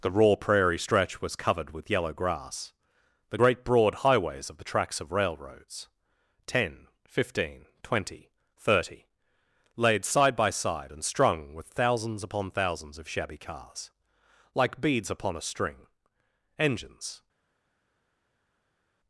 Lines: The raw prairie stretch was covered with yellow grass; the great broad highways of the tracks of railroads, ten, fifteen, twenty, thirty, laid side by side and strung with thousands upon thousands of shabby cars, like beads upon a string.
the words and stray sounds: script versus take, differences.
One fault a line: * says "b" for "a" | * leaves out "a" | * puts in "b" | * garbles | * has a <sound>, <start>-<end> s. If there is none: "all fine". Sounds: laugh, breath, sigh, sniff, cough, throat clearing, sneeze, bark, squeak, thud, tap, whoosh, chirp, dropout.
* puts in "Engines"